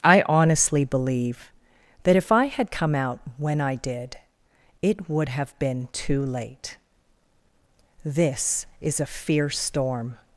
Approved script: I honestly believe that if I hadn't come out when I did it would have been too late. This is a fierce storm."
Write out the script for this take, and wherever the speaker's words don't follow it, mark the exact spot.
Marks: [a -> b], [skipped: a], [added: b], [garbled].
I honestly believe that if I [hadn't -> had] come out when I did it would have been too late. This is a fierce storm."